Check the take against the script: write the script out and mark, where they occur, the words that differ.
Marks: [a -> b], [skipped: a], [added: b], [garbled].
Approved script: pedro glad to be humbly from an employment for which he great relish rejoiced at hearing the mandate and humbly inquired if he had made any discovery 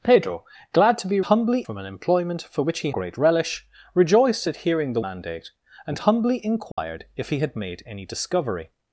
pedro glad to be humbly from an employment for which he great relish rejoiced at hearing the mandate and humbly inquired if he had made any discovery